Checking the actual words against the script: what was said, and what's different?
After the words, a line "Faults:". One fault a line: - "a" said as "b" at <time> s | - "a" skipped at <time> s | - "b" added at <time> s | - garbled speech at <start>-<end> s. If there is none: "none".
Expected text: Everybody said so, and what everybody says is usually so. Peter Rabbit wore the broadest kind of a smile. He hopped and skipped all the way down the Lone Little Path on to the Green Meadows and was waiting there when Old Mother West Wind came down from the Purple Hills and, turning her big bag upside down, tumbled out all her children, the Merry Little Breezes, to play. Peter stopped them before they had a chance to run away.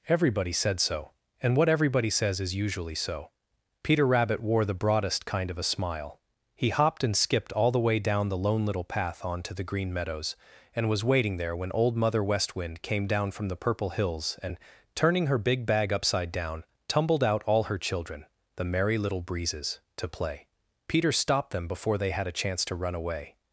Everybody said so, and what everybody says is usually so. Peter Rabbit wore the broadest kind of a smile. He hopped and skipped all the way down the Lone Little Path on to the Green Meadows and was waiting there when Old Mother West Wind came down from the Purple Hills and, turning her big bag upside down, tumbled out all her children, the Merry Little Breezes, to play. Peter stopped them before they had a chance to run away.
Faults:
none